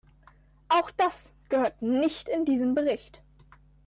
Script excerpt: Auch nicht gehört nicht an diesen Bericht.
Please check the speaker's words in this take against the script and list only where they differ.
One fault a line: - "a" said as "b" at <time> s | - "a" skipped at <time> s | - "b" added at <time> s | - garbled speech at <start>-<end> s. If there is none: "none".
- "nicht" said as "das" at 0.9 s
- "an" said as "in" at 2.3 s